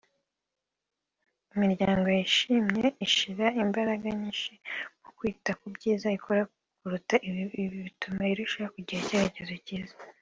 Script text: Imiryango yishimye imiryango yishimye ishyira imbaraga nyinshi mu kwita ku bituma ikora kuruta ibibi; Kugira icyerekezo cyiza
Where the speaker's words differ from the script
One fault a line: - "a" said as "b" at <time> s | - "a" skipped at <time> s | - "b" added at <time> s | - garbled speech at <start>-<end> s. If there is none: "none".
- "imiryango yishimye" skipped at 2.9 s
- "bituma" said as "byiza" at 5.7 s
- "Ibi bituma irushaho" added at 7.6 s